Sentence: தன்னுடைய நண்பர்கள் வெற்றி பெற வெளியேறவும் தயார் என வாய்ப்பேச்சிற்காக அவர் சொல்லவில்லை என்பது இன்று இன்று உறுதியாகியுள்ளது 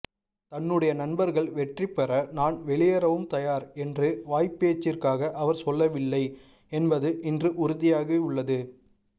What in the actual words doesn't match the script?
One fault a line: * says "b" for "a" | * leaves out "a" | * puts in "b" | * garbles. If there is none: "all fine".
* puts in "நான்"
* says "என்று" for "என"
* leaves out "இன்று"